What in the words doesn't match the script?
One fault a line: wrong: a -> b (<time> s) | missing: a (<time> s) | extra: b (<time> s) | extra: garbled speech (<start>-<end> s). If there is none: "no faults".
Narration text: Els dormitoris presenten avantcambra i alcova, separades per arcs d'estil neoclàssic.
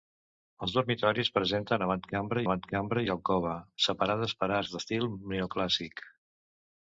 extra: avantcambra (2.5 s)